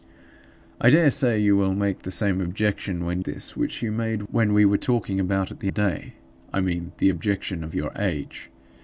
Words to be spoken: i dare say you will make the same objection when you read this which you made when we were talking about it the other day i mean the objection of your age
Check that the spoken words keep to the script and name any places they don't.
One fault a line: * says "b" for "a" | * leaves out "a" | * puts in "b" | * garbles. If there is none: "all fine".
* leaves out "you read"
* leaves out "other"